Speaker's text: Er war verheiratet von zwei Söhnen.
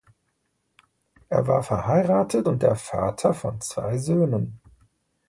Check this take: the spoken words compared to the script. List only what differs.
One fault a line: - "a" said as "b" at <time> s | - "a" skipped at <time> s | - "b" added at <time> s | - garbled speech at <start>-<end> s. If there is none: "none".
- "und der Vater" added at 2.4 s